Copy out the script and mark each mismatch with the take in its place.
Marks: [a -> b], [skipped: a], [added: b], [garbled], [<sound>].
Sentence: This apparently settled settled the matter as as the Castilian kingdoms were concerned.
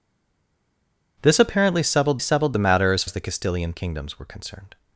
This apparently settled settled the matter as as the Castilian kingdoms were concerned.